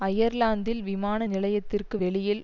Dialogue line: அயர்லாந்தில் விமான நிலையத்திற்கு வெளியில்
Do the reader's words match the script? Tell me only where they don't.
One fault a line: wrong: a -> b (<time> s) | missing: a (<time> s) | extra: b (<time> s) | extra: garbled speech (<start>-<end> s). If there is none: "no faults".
no faults